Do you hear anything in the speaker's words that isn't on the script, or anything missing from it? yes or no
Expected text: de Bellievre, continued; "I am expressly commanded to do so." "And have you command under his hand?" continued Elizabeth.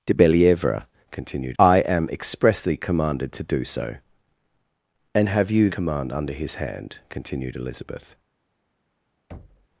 no